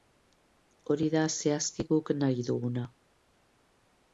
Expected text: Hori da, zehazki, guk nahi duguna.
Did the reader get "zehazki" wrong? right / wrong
right